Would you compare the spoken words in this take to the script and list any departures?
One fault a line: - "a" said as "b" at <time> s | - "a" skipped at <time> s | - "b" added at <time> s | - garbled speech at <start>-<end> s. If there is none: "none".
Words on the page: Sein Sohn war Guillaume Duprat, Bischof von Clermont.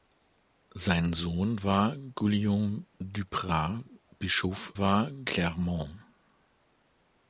- "von" said as "war" at 4.8 s